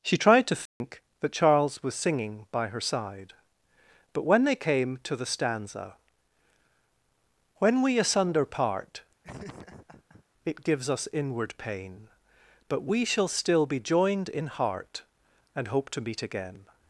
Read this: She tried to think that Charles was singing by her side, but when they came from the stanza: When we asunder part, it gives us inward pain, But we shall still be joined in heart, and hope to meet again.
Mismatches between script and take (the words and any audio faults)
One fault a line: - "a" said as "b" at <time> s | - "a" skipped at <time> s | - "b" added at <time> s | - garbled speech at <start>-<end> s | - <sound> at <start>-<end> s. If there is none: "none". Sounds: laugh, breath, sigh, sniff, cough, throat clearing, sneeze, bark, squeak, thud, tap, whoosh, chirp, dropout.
- dropout at 0.7-0.8 s
- "from" said as "to" at 5.0 s
- laugh at 9.2-10.2 s